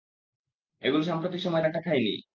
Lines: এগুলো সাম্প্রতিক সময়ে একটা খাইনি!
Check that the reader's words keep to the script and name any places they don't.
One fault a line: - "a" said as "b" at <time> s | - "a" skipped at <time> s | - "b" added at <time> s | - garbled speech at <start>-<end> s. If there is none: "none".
none